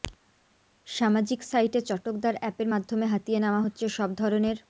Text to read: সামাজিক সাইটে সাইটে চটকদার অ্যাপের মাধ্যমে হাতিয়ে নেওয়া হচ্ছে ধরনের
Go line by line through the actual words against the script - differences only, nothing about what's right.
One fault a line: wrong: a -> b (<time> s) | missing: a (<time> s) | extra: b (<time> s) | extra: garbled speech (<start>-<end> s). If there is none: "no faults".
missing: সাইটে (1.8 s)
extra: সব (4.0 s)